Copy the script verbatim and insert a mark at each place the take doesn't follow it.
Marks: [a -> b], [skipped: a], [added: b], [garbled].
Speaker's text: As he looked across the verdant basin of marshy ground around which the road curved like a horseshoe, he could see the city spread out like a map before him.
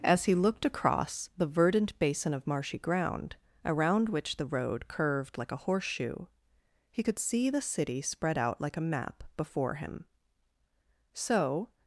As he looked across the verdant basin of marshy ground around which the road curved like a horseshoe, he could see the city spread out like a map before him. [added: So]